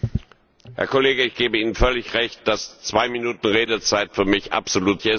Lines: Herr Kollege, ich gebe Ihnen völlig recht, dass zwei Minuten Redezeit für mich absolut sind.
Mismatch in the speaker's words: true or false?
false